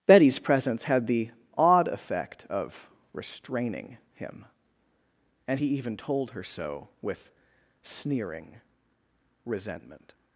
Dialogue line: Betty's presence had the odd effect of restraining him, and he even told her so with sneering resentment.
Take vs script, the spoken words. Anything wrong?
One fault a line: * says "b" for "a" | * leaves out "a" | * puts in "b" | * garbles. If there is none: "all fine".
all fine